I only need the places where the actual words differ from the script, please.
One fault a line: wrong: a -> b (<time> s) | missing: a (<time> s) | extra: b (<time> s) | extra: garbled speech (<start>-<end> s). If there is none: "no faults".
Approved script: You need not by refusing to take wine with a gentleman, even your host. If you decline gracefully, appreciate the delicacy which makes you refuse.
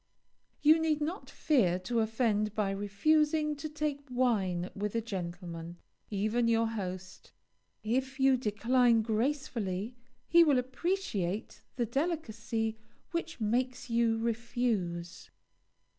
extra: fear to offend (1.3 s)
extra: he will (10.3 s)